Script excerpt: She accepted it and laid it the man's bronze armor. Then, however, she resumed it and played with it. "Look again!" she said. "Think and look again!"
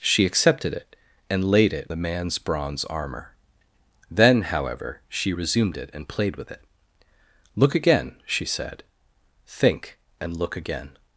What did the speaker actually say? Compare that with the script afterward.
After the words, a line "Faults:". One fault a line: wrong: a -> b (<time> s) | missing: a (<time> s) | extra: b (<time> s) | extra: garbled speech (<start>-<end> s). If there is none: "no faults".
She accepted it and laid it the man's bronze armor. Then, however, she resumed it and played with it. "Look again!" she said. "Think and look again!"
Faults:
no faults